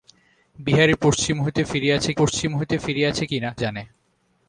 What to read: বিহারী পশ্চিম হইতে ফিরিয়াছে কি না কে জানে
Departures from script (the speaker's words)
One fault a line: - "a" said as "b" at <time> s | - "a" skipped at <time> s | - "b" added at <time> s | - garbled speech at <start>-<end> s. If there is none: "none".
- "পশ্চিম হইতে ফিরিয়াছে" added at 2.2 s
- "কে" skipped at 3.5 s